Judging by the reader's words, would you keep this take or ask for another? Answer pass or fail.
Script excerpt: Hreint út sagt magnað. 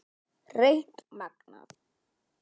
fail